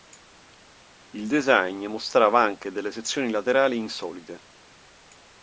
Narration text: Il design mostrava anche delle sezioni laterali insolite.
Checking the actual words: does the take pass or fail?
pass